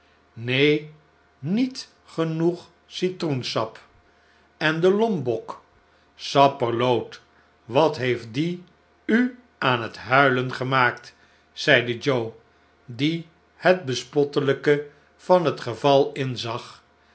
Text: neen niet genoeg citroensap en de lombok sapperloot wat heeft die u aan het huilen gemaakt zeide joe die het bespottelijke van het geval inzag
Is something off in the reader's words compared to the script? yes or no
no